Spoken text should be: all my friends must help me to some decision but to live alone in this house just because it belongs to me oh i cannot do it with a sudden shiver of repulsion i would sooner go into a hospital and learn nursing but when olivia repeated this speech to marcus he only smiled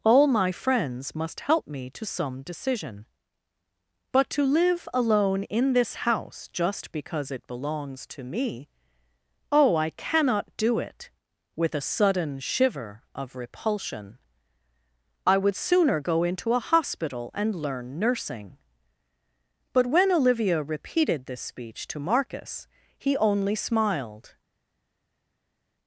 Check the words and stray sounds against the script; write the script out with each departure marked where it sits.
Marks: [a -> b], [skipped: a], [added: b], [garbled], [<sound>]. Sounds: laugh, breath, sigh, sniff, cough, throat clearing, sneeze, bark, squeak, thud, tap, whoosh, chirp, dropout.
all my friends must help me to some decision but to live alone in this house just because it belongs to me oh i cannot do it with a sudden shiver of repulsion i would sooner go into a hospital and learn nursing but when olivia repeated this speech to marcus he only smiled